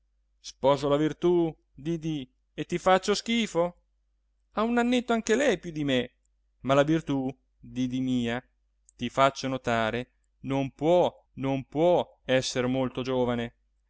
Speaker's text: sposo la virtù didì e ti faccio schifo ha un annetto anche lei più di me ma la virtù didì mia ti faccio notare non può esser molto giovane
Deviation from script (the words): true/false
true